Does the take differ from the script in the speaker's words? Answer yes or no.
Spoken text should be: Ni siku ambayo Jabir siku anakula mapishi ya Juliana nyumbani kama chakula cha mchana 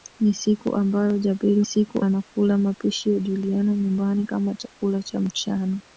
no